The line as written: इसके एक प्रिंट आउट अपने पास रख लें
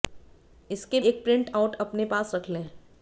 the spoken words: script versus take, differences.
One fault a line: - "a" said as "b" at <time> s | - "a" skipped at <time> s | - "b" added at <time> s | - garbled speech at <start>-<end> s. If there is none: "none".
none